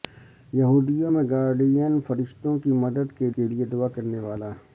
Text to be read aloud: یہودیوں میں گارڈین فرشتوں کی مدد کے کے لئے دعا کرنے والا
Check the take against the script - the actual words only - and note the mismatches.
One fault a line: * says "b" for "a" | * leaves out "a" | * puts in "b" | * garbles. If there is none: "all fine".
all fine